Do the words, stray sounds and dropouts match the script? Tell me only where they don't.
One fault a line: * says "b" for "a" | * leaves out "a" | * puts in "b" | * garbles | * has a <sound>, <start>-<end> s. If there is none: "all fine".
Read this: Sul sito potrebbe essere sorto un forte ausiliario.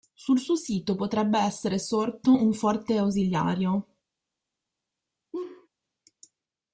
* puts in "suo"
* has a laugh, 5.3-5.7 s